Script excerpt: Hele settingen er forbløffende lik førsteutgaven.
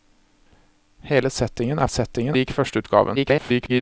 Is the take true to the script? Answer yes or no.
no